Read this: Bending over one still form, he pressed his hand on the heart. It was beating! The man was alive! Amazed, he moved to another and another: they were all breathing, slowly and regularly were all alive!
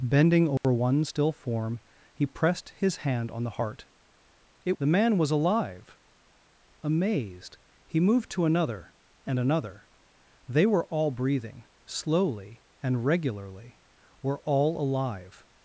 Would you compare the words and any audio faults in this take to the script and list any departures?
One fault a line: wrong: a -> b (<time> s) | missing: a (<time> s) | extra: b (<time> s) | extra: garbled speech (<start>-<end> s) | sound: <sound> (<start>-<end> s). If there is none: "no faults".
sound: dropout (0.6-0.6 s)
missing: was beating (4.8 s)